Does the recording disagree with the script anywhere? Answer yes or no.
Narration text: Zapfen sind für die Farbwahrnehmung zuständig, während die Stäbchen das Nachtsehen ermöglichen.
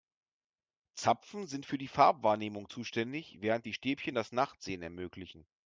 no